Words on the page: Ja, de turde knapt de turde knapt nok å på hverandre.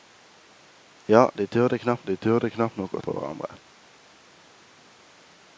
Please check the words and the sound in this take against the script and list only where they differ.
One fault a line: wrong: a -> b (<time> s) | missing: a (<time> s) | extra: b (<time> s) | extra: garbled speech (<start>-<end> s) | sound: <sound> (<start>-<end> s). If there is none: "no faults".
no faults